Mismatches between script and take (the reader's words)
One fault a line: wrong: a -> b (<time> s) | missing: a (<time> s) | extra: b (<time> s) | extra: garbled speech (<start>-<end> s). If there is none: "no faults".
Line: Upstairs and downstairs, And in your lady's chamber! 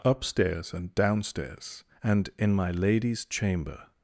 wrong: your -> my (2.5 s)